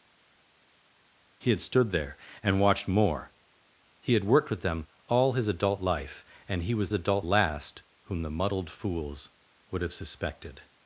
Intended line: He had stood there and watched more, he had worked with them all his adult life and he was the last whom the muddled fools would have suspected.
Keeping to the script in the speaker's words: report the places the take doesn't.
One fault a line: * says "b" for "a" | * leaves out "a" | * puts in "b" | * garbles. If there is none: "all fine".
* says "adult" for "the"